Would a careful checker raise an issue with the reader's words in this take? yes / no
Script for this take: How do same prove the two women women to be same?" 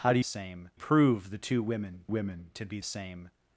no